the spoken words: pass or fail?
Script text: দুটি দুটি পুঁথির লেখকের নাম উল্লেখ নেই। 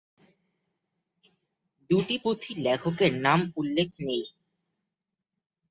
fail